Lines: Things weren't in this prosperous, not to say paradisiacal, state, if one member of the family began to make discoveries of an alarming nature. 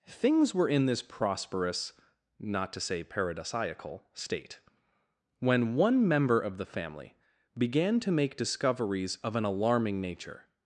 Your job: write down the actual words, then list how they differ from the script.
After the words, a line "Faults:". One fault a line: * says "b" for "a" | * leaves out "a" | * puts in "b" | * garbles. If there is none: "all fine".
Things were in this prosperous, not to say paradisiacal, state, when one member of the family began to make discoveries of an alarming nature.
Faults:
* says "were" for "weren't"
* says "when" for "if"